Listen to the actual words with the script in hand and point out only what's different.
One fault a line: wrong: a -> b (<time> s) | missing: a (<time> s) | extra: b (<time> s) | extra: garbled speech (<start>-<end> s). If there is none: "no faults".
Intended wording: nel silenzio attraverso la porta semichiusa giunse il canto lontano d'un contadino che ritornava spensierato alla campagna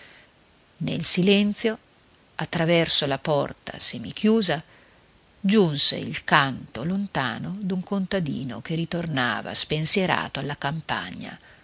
no faults